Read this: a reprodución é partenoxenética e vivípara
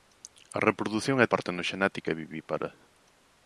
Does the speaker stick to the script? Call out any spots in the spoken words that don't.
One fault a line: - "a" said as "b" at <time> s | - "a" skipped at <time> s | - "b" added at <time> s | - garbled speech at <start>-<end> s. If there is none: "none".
none